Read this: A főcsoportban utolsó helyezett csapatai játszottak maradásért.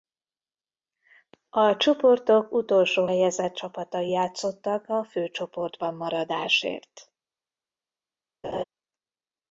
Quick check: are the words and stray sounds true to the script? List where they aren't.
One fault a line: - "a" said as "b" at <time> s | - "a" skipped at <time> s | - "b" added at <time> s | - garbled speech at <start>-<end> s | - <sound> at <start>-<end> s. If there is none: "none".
- "főcsoportban" said as "csoportok" at 1.8 s
- "a főcsoportban" added at 4.9 s
- laugh at 8.4-8.6 s